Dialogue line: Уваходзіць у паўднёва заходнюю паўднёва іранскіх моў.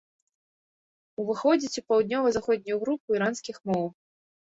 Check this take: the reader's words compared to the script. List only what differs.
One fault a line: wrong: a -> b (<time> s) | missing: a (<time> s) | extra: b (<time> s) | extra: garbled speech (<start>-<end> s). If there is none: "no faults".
wrong: паўднёва -> групу (2.8 s)